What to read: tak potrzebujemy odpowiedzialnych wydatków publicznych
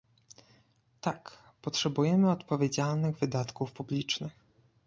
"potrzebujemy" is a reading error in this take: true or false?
false